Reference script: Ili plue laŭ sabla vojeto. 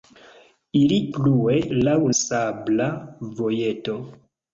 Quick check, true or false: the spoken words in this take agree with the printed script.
true